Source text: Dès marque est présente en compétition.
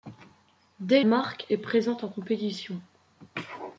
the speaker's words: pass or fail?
pass